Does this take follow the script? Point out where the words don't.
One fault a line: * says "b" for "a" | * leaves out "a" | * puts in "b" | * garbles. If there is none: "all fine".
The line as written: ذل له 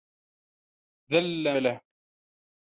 all fine